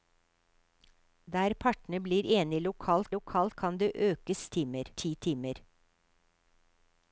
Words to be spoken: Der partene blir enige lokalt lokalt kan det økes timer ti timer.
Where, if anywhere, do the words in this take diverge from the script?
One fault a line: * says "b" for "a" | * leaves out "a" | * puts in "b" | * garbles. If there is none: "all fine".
all fine